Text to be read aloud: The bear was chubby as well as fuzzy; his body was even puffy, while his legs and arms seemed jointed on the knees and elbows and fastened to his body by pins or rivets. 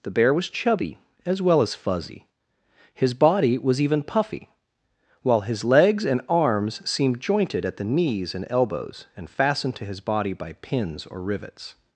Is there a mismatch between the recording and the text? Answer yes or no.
yes